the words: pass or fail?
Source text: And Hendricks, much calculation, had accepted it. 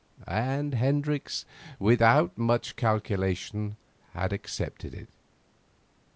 fail